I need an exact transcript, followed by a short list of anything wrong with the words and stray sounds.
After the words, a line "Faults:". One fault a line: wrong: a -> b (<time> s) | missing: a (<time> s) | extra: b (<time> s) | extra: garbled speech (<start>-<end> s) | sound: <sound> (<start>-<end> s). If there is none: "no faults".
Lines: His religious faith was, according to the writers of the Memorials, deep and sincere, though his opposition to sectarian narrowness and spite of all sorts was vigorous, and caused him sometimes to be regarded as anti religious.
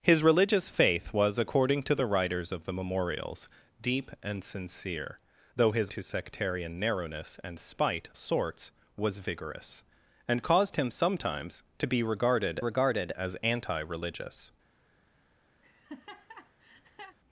His religious faith was, according to the writers of the Memorials, deep and sincere, though his to sectarian narrowness and spite sorts was vigorous, and caused him sometimes to be regarded regarded as anti religious.
Faults:
missing: opposition (5.9 s)
missing: of all (8.1 s)
extra: regarded (12.6 s)
sound: laugh (15.6-17.2 s)